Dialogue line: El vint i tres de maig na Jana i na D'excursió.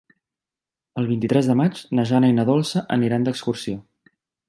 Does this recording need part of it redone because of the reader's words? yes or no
yes